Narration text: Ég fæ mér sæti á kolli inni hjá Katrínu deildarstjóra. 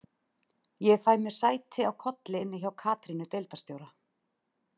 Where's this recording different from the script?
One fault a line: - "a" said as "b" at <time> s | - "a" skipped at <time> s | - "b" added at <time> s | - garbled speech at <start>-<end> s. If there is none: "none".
none